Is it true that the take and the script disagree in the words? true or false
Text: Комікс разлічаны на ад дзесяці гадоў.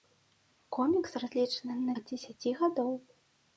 false